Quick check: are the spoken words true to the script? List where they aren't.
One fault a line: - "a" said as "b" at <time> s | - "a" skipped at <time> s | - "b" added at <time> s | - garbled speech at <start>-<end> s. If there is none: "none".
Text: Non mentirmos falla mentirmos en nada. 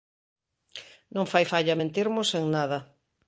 - "mentirmos" said as "fai" at 1.3 s